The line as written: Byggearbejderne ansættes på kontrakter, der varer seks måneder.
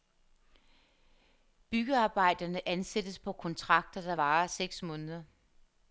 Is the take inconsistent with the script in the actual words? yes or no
no